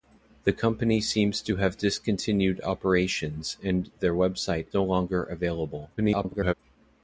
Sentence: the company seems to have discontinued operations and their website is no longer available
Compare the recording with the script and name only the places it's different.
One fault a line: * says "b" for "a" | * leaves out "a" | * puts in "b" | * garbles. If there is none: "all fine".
* leaves out "is"
* garbles